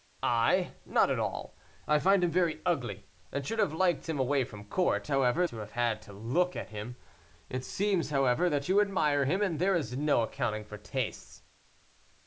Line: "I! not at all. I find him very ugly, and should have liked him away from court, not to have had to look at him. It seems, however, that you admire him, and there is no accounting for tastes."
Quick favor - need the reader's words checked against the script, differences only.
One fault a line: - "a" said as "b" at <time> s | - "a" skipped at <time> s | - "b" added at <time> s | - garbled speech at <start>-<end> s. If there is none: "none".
- "not" said as "however" at 5.1 s